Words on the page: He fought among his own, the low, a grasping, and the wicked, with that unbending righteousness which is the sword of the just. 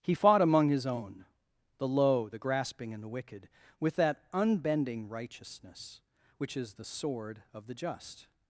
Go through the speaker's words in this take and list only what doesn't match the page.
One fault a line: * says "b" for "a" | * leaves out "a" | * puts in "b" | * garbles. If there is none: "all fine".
* says "the" for "a"